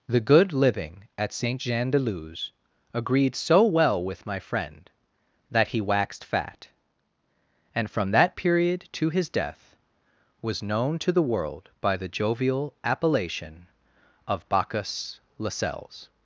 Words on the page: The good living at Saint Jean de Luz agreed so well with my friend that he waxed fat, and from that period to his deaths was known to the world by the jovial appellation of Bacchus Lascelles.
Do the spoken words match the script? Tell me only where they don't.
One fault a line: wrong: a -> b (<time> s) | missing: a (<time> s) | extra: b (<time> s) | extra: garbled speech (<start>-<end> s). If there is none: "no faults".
wrong: deaths -> death (9.3 s)